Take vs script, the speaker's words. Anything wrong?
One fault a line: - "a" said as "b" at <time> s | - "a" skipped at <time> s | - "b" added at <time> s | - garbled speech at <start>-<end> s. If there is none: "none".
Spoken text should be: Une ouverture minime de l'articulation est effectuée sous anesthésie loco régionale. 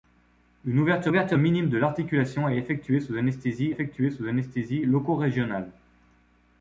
- "ouverture" added at 1.1 s
- "effectuée sous anesthésie" added at 3.7 s